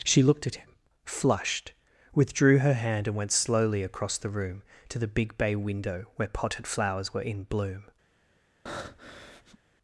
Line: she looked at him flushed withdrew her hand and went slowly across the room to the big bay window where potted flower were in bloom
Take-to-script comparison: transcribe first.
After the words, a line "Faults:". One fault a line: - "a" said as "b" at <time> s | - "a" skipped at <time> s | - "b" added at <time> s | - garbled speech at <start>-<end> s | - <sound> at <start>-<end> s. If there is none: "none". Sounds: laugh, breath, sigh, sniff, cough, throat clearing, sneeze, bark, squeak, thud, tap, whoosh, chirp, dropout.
she looked at him flushed withdrew her hand and went slowly across the room to the big bay window where potted flowers were in bloom
Faults:
- "flower" said as "flowers" at 6.7 s
- breath at 8.7-9.6 s